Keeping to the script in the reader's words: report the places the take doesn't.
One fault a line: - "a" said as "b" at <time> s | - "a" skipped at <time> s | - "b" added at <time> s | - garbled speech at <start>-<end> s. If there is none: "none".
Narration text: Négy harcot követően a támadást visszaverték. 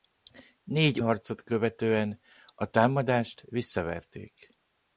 none